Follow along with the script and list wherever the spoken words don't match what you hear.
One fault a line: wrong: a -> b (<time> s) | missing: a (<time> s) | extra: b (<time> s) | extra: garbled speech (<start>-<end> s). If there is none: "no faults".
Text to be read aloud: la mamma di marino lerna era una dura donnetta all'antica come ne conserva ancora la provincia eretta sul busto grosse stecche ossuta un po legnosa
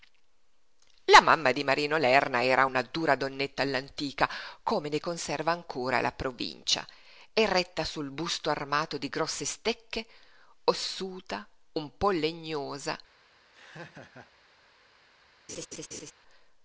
extra: armato di (8.5 s)